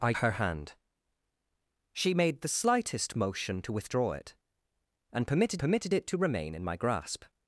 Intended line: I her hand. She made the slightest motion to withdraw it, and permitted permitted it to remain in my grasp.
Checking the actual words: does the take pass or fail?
pass